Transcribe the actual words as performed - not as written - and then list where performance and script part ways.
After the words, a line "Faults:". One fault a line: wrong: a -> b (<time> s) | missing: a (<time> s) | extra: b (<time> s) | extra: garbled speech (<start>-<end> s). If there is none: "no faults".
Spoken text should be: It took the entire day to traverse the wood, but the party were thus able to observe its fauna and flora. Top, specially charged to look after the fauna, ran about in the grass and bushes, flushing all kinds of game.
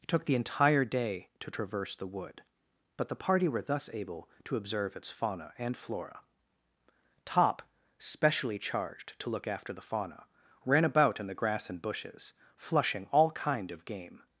It took the entire day to traverse the wood, but the party were thus able to observe its fauna and flora. Top, specially charged to look after the fauna, ran about in the grass and bushes, flushing all kind of game.
Faults:
wrong: kinds -> kind (13.3 s)